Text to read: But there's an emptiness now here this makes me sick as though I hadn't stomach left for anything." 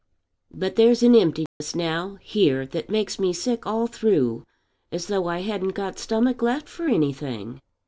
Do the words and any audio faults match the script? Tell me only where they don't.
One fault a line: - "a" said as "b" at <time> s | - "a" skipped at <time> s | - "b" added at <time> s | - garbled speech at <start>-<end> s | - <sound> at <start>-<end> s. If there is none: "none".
- dropout at 1.5-1.6 s
- "this" said as "that" at 2.6 s
- "all through" added at 3.7 s
- "got" added at 5.8 s